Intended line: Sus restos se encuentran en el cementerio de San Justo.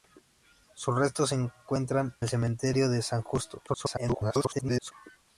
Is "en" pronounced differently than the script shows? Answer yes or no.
yes